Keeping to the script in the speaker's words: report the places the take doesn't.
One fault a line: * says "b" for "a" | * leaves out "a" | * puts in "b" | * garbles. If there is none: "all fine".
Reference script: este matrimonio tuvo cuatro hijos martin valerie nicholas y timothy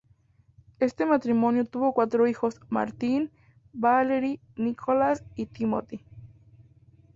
all fine